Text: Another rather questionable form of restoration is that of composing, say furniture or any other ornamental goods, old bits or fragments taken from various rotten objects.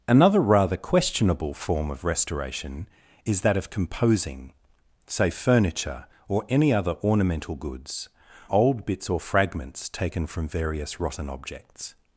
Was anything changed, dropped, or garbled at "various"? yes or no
no